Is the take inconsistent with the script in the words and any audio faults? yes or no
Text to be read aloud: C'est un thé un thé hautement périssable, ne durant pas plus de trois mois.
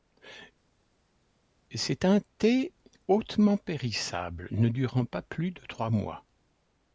yes